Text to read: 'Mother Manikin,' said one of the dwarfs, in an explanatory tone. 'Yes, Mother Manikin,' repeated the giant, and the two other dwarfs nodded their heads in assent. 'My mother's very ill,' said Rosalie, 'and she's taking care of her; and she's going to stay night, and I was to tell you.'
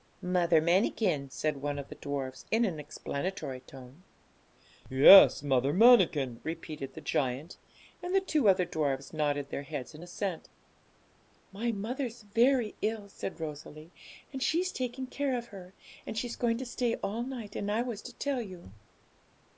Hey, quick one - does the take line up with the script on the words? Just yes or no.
no